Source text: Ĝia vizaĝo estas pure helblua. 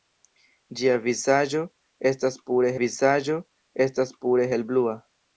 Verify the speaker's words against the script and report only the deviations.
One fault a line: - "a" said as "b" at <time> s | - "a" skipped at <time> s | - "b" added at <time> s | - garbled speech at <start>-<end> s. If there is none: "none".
- "vizaĝo estas pure" added at 2.8 s